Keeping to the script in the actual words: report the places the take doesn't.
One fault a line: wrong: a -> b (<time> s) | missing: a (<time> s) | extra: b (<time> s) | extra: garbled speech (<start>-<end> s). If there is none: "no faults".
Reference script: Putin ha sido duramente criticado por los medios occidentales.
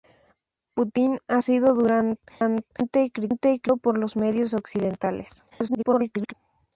extra: garbled speech (5.5-6.3 s)